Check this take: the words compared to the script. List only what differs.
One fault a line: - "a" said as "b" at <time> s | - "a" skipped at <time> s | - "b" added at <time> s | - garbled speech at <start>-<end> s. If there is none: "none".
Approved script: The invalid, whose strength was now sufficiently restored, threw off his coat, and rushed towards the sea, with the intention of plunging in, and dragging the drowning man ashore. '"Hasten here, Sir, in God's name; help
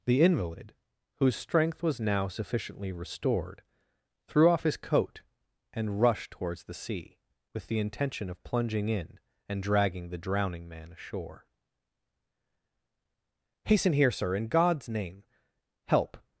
none